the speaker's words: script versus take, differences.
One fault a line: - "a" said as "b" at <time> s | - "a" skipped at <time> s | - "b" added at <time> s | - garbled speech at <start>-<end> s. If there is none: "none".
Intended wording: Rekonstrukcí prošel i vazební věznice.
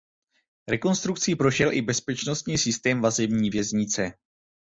- "bezpečnostní systém" added at 1.8 s